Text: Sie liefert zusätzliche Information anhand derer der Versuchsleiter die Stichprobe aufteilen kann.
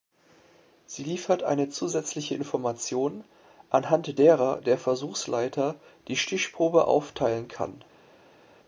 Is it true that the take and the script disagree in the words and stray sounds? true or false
true